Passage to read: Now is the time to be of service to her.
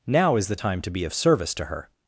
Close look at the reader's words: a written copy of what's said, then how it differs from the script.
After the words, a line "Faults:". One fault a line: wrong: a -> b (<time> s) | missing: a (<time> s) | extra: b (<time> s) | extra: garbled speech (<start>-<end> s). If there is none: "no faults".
Now is the time to be of service to her.
Faults:
no faults